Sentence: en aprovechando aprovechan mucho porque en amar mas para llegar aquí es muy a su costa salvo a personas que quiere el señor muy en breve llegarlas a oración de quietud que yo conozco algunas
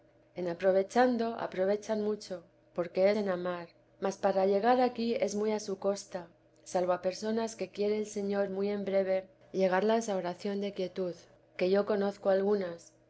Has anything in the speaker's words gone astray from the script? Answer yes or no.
no